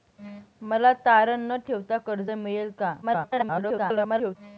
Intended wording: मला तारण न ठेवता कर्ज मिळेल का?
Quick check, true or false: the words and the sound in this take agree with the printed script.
false